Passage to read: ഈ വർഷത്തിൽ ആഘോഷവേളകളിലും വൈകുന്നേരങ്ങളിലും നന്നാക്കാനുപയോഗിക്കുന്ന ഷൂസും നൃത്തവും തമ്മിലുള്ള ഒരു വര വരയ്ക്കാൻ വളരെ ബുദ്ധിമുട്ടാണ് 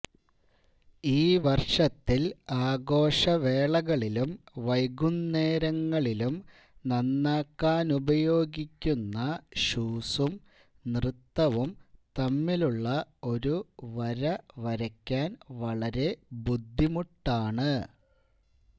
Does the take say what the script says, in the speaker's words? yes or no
yes